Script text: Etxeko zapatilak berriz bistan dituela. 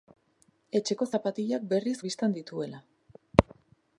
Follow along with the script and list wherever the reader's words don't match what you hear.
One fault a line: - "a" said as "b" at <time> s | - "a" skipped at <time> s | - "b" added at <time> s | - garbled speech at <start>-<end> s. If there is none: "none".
none